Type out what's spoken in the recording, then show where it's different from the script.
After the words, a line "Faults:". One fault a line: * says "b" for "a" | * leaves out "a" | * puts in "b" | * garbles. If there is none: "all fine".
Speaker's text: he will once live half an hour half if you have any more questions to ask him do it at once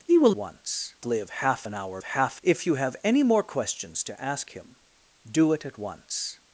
he will once live half an hour half if you have any more questions to ask him do it at once
Faults:
all fine